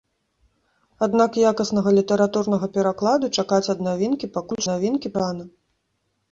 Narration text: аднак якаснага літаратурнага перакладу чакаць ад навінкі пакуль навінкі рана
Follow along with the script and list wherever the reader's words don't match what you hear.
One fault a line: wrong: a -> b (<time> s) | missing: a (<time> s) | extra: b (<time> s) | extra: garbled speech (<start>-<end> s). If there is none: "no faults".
no faults